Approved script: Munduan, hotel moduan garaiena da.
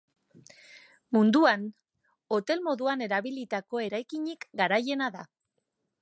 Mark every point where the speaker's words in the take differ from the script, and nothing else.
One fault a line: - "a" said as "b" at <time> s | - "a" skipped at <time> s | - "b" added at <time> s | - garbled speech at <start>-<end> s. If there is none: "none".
- "erabilitako eraikinik" added at 3.1 s